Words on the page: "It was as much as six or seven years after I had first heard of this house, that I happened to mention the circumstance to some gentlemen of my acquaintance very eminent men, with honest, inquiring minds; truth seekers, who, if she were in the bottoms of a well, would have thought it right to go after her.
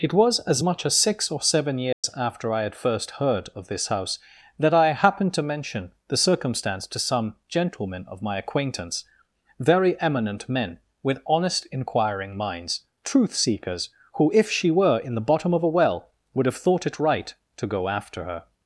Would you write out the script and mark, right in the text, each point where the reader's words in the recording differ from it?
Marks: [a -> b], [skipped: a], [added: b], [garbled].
"It was as much as six or seven years after I had first heard of this house, that I happened to mention the circumstance to some gentlemen of my acquaintance very eminent men, with honest, inquiring minds; truth seekers, who, if she were in the [bottoms -> bottom] of a well, would have thought it right to go after her.